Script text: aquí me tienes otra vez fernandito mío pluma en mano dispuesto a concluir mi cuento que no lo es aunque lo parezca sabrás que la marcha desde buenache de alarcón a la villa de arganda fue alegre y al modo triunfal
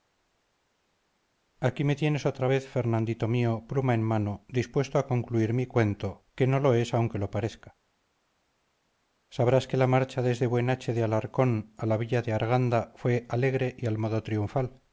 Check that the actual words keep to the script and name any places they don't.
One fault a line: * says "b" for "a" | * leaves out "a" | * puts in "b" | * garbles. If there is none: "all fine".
all fine